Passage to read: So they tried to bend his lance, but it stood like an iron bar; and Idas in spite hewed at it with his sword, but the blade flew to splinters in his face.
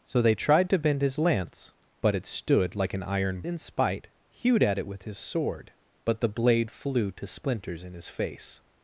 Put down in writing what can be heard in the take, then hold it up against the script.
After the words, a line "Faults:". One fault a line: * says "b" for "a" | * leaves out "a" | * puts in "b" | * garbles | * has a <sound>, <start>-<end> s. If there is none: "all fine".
So they tried to bend his lance, but it stood like an iron in spite hewed at it with his sword, but the blade flew to splinters in his face.
Faults:
* leaves out "bar and Idas"